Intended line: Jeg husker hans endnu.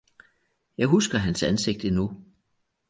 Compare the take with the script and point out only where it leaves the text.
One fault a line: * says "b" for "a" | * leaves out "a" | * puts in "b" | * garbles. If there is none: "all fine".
* puts in "ansigt"